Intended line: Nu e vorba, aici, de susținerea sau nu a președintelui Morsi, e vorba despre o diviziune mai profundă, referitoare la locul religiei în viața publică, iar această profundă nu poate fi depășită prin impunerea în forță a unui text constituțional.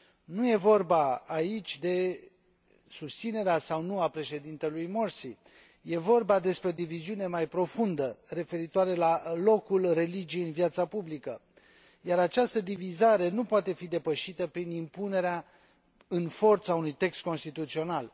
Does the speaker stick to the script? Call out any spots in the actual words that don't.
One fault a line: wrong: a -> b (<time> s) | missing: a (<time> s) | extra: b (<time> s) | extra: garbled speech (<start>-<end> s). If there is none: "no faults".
wrong: profundă -> divizare (12.6 s)